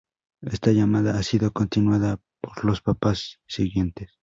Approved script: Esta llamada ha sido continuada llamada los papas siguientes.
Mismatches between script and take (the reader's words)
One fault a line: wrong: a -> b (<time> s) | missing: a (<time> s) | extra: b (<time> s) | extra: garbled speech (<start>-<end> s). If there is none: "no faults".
wrong: llamada -> por (2.4 s)